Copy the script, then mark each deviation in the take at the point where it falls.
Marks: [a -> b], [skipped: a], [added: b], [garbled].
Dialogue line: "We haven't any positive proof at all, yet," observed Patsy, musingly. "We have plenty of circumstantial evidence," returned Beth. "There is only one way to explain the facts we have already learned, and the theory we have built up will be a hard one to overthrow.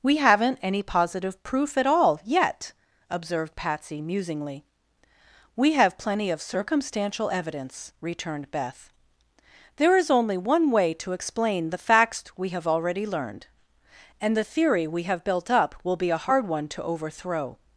"We haven't any positive proof at all, yet," observed Patsy, musingly. "We have plenty of circumstantial evidence," returned Beth. "There is only one way to explain the facts we have already learned, and the theory we have built up will be a hard one to overthrow.